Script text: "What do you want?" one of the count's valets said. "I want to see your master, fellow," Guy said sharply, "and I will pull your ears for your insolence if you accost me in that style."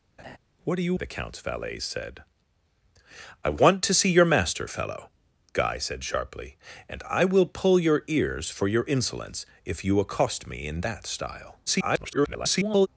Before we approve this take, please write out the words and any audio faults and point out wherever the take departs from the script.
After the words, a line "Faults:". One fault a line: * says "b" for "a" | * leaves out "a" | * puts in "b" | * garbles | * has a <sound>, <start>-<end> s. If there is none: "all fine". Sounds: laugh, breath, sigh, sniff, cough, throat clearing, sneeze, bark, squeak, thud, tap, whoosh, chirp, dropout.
"What do you of the count's valets said. "I want to see your master, fellow," Guy said sharply, "and I will pull your ears for your insolence if you accost me in that style." [garbled]
Faults:
* has a laugh, 0.2-0.4 s
* leaves out "want one"
* garbles